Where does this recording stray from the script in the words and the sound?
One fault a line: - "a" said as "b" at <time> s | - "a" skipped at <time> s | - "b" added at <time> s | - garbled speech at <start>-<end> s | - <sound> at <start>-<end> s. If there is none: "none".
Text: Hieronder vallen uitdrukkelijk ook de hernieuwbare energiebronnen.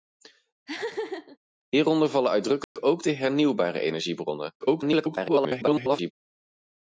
- laugh at 0.7-1.4 s
- dropout at 2.6-2.8 s
- garbled speech at 4.6-6.1 s